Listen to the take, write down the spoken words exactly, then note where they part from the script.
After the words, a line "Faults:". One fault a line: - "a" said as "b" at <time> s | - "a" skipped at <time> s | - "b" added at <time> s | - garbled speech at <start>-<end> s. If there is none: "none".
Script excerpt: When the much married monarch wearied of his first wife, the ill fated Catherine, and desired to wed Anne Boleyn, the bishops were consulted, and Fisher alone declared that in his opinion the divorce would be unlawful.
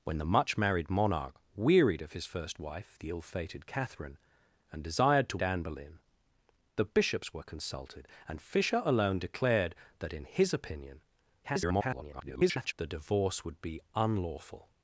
When the much married monarch wearied of his first wife, the ill fated Catherine, and desired to Anne Boleyn, the bishops were consulted, and Fisher alone declared that in his opinion [garbled] the divorce would be unlawful.
Faults:
- "wed" skipped at 5.4 s
- garbled speech at 11.4-12.7 s